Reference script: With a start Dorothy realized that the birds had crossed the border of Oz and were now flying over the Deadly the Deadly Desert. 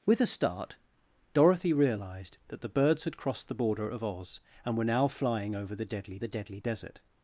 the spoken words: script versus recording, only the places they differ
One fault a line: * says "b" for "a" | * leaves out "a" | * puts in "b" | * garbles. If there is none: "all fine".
all fine